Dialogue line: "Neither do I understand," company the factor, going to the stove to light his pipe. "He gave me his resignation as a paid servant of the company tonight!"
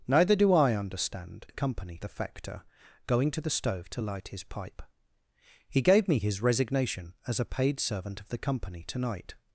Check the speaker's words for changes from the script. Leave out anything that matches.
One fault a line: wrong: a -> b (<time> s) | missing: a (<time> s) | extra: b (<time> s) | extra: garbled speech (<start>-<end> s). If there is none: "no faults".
no faults